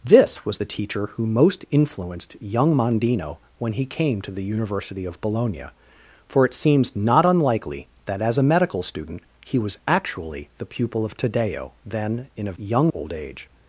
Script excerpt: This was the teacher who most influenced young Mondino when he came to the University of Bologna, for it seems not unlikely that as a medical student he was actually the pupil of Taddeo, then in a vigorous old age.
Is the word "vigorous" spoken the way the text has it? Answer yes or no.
no